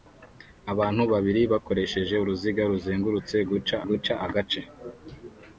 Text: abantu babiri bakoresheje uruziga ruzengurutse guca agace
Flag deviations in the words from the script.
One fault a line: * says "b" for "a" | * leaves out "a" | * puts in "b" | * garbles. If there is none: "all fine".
* puts in "guca"